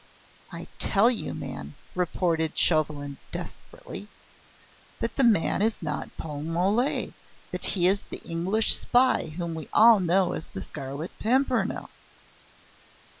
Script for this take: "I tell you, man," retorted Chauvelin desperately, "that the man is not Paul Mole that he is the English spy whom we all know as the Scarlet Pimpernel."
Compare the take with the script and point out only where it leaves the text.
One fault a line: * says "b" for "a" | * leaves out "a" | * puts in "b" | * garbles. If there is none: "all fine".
all fine